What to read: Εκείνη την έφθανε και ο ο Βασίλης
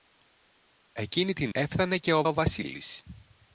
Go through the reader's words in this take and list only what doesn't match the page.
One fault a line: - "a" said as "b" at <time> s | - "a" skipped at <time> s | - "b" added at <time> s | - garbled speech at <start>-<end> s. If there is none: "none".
none